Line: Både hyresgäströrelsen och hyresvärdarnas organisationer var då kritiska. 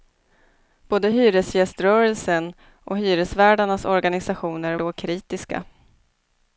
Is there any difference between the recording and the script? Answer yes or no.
yes